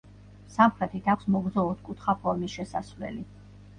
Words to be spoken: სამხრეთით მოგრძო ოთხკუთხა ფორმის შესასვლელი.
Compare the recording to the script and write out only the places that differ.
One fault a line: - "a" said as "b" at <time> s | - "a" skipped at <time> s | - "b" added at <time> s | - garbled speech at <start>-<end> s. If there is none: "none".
- "აქვს" added at 1.1 s